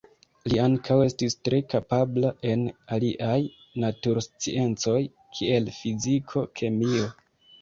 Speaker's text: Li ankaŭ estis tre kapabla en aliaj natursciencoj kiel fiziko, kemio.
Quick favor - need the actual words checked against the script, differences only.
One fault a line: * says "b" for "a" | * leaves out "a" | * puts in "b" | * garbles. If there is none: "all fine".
all fine